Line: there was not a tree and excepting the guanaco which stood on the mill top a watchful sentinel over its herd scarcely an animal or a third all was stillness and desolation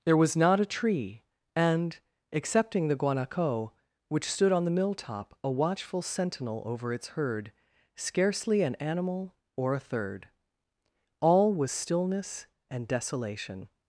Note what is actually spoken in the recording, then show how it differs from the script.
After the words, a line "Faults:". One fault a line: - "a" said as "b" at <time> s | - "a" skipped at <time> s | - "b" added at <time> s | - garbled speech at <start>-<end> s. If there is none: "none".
there was not a tree and excepting the guanaco which stood on the mill top a watchful sentinel over its herd scarcely an animal or a third all was stillness and desolation
Faults:
none